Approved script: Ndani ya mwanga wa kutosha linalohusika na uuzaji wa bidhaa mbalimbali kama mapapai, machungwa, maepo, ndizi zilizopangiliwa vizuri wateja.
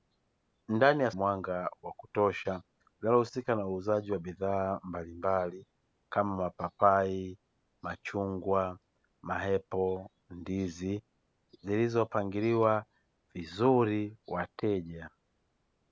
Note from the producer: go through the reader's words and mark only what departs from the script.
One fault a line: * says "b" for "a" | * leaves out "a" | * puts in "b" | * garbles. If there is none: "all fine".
all fine